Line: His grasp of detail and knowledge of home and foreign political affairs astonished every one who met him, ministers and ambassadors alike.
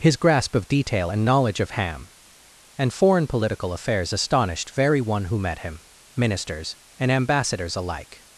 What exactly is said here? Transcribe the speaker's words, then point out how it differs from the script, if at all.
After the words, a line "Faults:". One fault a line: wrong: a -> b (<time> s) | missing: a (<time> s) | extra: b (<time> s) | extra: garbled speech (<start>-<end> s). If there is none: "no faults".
His grasp of detail and knowledge of ham and foreign political affairs astonished very one who met him, ministers and ambassadors alike.
Faults:
wrong: home -> ham (1.7 s)
wrong: every -> very (4.7 s)